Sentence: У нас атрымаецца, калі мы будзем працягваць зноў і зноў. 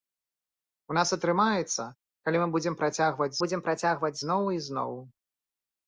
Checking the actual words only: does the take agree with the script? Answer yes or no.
no